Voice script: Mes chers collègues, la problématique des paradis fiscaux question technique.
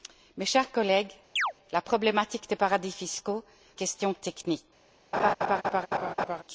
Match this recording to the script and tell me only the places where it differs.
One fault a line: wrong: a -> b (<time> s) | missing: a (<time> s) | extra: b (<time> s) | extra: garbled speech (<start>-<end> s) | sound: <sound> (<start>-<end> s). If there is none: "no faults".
sound: chirp (1.4-1.5 s)
sound: laugh (5.1-6.4 s)